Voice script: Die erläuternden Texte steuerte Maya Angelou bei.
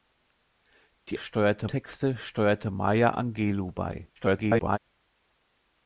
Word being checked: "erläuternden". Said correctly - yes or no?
no